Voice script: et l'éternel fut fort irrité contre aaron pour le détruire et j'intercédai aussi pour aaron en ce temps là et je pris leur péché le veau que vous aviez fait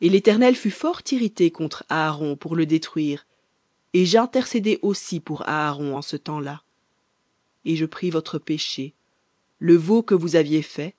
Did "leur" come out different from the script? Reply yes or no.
yes